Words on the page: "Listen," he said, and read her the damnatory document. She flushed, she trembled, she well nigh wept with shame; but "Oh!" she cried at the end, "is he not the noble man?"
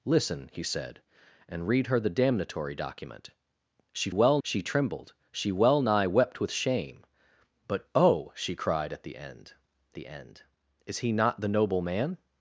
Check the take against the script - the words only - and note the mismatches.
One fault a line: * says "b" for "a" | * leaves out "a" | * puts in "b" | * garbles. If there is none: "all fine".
* says "well" for "flushed"
* puts in "the end"